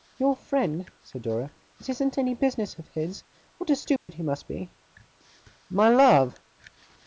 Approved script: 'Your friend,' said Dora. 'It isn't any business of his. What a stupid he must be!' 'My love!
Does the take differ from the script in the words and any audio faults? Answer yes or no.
yes